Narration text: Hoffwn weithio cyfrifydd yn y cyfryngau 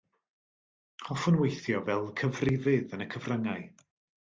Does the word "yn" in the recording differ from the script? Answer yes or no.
no